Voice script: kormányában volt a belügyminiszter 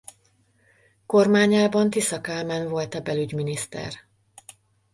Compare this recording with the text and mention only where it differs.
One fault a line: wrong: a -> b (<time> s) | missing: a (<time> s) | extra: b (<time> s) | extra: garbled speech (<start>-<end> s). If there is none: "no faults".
extra: tisza kálmán (1.9 s)